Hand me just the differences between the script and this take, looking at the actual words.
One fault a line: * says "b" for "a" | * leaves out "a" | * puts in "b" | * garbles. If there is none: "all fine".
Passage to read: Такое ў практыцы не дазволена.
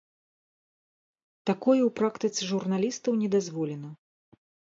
* puts in "журналістаў"